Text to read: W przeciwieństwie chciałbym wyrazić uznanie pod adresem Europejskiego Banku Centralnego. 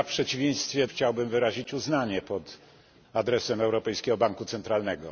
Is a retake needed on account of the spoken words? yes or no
no